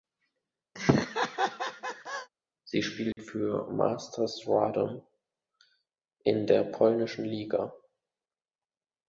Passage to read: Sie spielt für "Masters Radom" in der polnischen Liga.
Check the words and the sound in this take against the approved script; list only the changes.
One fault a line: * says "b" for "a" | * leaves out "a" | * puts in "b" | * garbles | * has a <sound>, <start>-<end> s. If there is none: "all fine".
* has a laugh, 0.7-2.3 s
* has a dropout, 3.1-3.2 s